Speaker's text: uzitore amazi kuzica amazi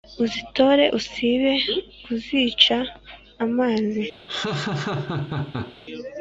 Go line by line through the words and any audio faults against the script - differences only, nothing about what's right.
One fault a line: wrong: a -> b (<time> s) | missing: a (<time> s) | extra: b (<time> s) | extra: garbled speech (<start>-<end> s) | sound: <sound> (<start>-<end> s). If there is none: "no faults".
wrong: amazi -> usibe (1.0 s)
sound: laugh (4.3-5.8 s)